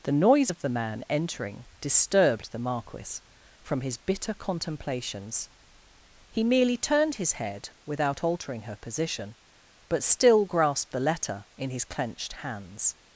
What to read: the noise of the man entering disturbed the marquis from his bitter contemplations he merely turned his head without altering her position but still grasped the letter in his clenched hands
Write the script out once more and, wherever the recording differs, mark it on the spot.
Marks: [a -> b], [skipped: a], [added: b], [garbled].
the noise of the man entering disturbed the marquis from his bitter contemplations he merely turned his head without altering her position but still grasped the letter in his clenched hands